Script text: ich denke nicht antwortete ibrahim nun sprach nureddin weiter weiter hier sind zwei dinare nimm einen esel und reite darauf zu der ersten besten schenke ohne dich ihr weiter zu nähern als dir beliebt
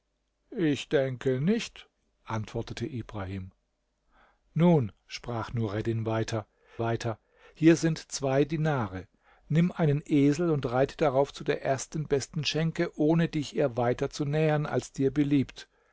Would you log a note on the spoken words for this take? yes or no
no